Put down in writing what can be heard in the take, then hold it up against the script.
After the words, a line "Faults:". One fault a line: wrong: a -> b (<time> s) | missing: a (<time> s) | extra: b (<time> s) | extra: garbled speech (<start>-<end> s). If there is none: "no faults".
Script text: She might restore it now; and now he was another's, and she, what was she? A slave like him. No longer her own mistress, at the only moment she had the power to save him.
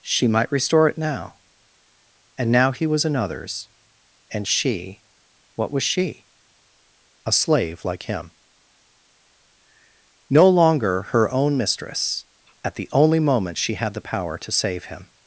She might restore it now; and now he was another's, and she, what was she? A slave like him. No longer her own mistress, at the only moment she had the power to save him.
Faults:
no faults